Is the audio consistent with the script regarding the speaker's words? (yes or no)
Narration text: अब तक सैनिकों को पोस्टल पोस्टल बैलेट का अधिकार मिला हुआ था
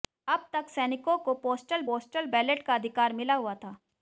yes